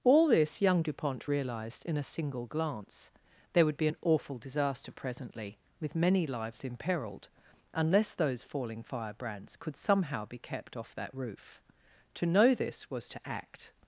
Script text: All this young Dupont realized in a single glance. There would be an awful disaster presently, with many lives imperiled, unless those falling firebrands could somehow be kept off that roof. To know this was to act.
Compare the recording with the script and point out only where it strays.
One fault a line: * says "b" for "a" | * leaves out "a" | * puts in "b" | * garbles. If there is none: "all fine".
all fine